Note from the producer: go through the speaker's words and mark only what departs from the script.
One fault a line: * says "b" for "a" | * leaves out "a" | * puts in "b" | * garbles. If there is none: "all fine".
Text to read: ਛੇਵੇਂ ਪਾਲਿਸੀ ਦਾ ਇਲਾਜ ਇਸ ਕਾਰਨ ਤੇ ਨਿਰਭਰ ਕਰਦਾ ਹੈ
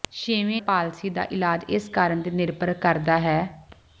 all fine